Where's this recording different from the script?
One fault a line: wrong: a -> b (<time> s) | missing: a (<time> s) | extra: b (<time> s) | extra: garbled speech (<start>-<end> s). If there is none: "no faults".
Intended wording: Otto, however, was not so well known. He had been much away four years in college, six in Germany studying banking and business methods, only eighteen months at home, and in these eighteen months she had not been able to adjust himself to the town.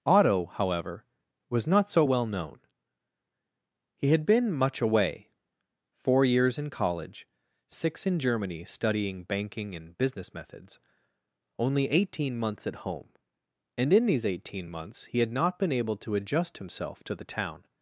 wrong: she -> he (15.1 s)